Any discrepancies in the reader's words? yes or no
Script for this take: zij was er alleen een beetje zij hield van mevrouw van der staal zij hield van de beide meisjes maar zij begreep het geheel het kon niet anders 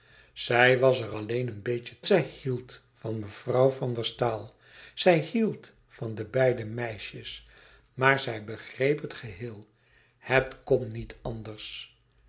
no